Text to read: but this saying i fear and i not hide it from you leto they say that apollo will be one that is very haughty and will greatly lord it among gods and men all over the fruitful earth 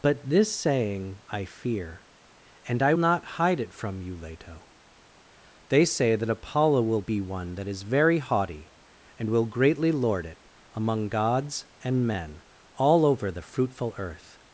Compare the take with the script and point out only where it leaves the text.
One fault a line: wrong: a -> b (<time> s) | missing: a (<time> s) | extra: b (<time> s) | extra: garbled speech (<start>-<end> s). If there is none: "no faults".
no faults